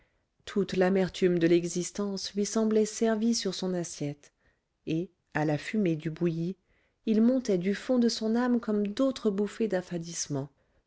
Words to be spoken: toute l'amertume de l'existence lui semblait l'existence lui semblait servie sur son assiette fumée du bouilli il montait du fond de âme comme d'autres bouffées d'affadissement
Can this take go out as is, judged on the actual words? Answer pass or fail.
fail